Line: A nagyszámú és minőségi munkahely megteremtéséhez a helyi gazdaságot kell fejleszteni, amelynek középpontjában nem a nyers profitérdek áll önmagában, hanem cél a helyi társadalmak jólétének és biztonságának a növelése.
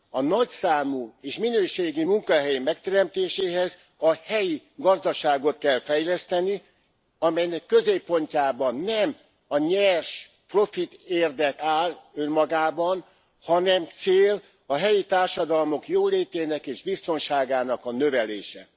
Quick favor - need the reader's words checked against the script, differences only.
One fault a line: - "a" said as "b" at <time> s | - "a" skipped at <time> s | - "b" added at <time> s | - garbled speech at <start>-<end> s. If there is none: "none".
none